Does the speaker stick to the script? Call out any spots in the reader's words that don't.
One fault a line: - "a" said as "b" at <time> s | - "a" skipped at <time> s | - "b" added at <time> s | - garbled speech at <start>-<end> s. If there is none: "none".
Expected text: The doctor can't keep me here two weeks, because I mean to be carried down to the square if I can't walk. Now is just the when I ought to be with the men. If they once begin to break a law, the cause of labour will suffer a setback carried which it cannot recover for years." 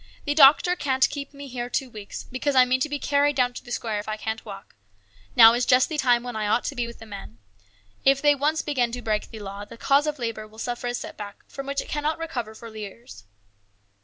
- "time" added at 6.0 s
- "a" said as "the" at 9.3 s
- "carried" said as "from" at 11.5 s